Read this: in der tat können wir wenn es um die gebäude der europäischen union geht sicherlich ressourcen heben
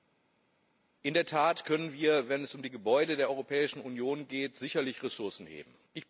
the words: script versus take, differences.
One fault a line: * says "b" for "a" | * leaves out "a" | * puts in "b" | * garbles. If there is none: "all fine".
all fine